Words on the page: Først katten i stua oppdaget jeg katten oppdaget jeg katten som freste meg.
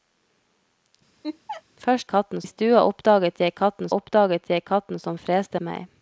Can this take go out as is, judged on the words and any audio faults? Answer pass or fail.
fail